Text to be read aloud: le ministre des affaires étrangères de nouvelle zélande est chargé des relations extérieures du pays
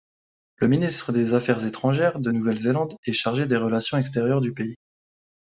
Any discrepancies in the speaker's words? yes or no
no